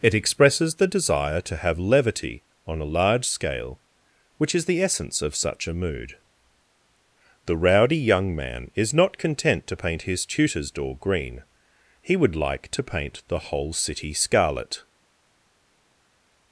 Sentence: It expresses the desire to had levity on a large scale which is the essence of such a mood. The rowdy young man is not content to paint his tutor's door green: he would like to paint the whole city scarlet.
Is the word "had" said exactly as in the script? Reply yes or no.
no